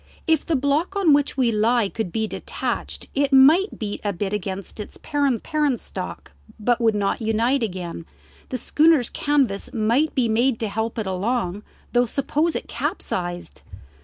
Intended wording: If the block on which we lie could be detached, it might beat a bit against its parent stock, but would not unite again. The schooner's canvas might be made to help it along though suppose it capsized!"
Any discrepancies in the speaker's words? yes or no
yes